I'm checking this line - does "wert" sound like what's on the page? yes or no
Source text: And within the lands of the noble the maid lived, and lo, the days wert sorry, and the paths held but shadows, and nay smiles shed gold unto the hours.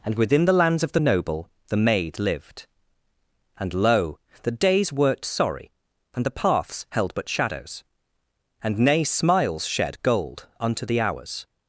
no